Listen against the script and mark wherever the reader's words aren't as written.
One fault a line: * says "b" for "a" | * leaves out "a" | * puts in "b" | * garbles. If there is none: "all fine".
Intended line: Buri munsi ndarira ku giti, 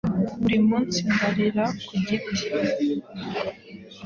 all fine